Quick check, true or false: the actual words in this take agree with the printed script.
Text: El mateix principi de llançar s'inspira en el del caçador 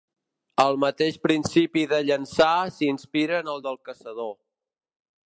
true